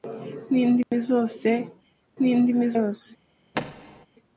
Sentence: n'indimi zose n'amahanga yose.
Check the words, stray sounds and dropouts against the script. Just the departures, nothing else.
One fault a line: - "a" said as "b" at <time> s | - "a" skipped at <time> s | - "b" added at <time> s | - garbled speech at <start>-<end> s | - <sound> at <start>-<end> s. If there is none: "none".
- dropout at 0.8-0.9 s
- "n'amahanga" said as "n'indimi" at 2.2 s
- thud at 3.5-4.1 s